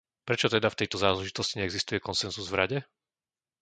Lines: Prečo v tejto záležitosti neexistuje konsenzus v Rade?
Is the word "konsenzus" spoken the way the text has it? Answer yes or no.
yes